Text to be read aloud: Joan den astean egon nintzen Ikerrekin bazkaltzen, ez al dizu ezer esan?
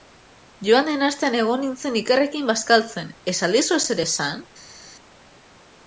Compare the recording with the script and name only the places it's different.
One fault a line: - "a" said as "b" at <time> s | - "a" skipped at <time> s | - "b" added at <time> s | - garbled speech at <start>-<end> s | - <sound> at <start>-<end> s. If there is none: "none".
none